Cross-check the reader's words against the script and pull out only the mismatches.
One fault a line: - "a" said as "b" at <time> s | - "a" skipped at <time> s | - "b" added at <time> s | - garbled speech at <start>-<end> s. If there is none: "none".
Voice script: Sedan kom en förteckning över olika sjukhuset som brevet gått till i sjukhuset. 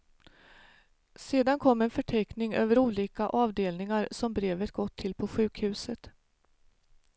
- "sjukhuset" said as "avdelningar" at 3.3 s
- "i" said as "på" at 5.1 s